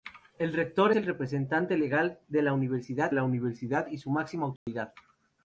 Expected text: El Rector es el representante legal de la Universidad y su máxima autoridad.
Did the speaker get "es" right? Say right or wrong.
wrong